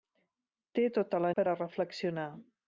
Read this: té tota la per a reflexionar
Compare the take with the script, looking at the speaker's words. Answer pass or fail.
pass